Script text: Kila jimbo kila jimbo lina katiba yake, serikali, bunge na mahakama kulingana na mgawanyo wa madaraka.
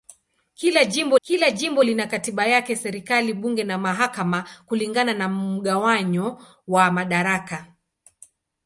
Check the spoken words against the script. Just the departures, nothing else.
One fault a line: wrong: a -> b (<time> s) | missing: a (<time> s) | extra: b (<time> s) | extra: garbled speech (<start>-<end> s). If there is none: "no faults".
no faults